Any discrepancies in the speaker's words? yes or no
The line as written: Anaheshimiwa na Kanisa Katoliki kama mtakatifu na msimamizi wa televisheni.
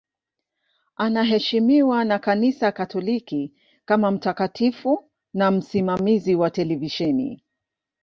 no